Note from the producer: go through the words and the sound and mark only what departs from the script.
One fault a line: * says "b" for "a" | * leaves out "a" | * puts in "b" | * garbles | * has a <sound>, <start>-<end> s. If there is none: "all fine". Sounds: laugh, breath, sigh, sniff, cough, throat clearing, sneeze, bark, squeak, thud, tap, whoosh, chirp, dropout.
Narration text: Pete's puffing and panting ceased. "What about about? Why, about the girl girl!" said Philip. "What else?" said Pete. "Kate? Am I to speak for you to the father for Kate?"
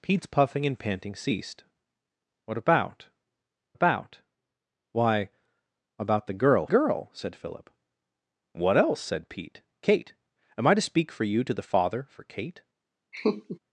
* has a laugh, 13.1-13.6 s